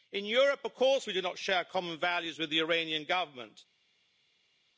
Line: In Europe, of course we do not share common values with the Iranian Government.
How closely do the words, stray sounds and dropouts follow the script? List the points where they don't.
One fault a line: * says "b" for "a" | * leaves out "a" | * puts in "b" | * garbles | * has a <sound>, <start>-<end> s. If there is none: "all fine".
all fine